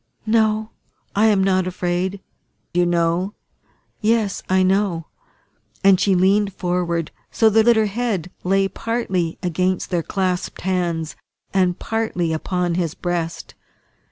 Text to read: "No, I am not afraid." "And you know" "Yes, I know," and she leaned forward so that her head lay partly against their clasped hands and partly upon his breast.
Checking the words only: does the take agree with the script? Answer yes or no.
no